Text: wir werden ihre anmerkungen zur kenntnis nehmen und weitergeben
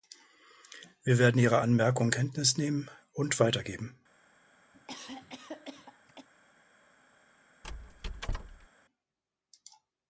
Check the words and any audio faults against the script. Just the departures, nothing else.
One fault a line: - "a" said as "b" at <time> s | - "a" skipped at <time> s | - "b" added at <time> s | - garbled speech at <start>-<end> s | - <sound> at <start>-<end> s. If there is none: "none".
- "zur" skipped at 2.1 s
- cough at 4.7-6.3 s
- squeak at 7.6-8.7 s